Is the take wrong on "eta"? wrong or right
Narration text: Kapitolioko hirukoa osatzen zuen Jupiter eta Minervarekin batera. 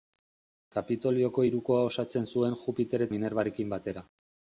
wrong